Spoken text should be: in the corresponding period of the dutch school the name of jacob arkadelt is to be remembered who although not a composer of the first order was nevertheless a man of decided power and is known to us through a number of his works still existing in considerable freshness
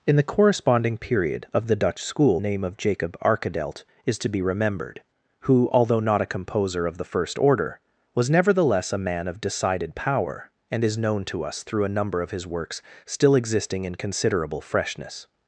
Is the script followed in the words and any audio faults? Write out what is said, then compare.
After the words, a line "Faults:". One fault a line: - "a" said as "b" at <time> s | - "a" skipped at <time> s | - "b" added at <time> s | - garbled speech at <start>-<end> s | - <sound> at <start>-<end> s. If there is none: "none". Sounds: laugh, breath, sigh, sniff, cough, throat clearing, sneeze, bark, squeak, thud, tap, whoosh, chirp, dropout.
in the corresponding period of the dutch school name of jacob arkadelt is to be remembered who although not a composer of the first order was nevertheless a man of decided power and is known to us through a number of his works still existing in considerable freshness
Faults:
- "the" skipped at 2.4 s